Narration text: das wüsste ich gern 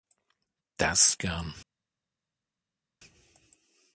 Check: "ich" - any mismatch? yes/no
yes